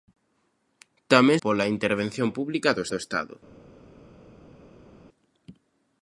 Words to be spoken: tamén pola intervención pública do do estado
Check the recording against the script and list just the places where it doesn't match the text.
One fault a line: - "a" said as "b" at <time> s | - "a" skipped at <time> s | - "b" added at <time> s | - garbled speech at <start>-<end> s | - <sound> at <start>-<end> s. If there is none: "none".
none